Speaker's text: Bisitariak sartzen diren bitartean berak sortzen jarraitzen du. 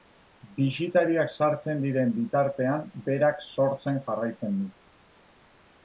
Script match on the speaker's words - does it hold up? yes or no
yes